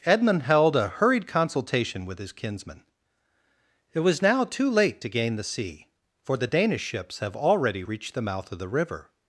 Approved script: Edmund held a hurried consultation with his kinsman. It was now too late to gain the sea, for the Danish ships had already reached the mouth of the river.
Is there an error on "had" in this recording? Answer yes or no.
yes